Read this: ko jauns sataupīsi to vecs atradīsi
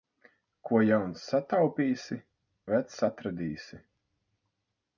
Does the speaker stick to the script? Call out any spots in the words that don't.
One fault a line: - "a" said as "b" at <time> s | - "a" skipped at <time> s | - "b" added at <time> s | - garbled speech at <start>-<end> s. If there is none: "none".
- "to" skipped at 2.2 s